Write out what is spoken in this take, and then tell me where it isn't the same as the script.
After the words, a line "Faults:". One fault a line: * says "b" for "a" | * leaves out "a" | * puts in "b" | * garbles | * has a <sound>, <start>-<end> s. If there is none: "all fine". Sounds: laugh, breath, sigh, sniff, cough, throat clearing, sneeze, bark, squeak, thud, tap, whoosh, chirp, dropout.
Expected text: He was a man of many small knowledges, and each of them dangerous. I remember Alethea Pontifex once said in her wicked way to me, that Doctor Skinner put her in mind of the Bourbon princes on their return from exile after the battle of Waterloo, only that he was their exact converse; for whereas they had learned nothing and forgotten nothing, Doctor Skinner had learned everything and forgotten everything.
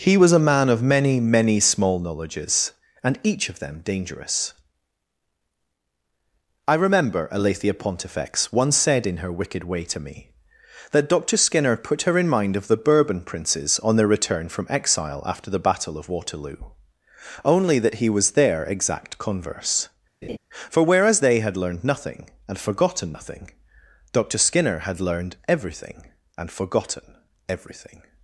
He was a man of many many small knowledges, and each of them dangerous. I remember Alethea Pontifex once said in her wicked way to me, that Doctor Skinner put her in mind of the Bourbon princes on their return from exile after the battle of Waterloo, only that he was their exact converse; for whereas they had learned nothing and forgotten nothing, Doctor Skinner had learned everything and forgotten everything.
Faults:
* puts in "many"
* has a laugh, 20.2-20.4 s